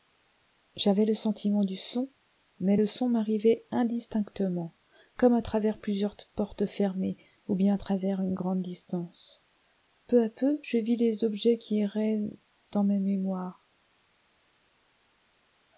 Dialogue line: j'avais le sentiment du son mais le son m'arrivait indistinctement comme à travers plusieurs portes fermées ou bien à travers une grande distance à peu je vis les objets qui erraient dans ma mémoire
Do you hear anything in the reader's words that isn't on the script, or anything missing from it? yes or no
yes